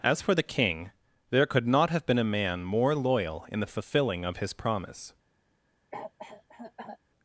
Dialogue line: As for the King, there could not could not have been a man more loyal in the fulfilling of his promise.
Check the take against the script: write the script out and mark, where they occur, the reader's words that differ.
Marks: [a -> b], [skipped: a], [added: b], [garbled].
As for the King, there could not [skipped: could not] have been a man more loyal in the fulfilling of his promise.